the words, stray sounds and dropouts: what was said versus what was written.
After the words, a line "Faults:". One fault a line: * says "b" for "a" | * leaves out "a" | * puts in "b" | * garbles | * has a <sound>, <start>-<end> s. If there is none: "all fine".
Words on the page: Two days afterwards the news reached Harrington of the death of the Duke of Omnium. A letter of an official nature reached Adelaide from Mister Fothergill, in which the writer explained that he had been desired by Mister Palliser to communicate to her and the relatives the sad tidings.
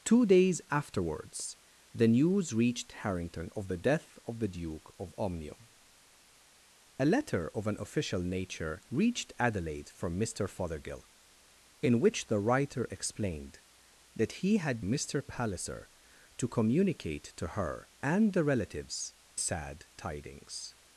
Two days afterwards the news reached Harrington of the death of the Duke of Omnium. A letter of an official nature reached Adelaide from Mister Fothergill, in which the writer explained that he had Mister Palliser to communicate to her and the relatives sad tidings.
Faults:
* leaves out "been desired by"
* leaves out "the"